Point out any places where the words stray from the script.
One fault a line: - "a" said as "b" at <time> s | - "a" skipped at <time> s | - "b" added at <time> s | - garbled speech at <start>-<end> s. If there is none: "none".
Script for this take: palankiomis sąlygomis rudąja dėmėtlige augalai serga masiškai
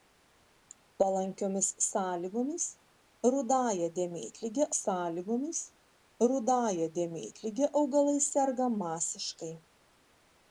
- "sąlygomis rudąja dėmėtlige" added at 4.8 s